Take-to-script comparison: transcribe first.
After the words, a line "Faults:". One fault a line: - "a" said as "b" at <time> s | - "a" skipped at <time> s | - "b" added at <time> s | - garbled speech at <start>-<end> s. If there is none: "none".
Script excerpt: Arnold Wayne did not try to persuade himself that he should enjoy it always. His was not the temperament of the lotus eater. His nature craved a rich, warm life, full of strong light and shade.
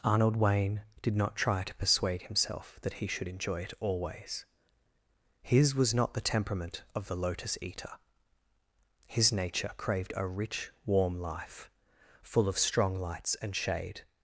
Arnold Wayne did not try to persuade himself that he should enjoy it always. His was not the temperament of the lotus eater. His nature craved a rich, warm life, full of strong lights and shade.
Faults:
- "light" said as "lights" at 13.0 s